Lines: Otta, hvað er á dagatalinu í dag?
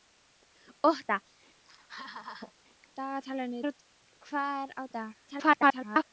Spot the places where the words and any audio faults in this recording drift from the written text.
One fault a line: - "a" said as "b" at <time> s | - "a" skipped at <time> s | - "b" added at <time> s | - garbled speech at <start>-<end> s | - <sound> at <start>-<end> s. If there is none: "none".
- laugh at 1.6-2.5 s
- "hvað" said as "dagatalinu" at 3.0 s
- "dagatalinu" skipped at 4.8 s
- garbled speech at 5.3-6.0 s